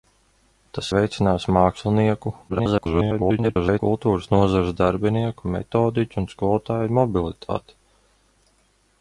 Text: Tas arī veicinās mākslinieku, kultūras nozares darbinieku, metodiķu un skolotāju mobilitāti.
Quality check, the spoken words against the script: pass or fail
fail